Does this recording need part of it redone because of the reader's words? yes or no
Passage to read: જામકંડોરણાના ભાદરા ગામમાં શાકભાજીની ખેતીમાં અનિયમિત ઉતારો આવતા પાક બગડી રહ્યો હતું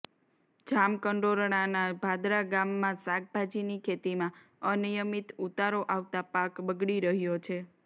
yes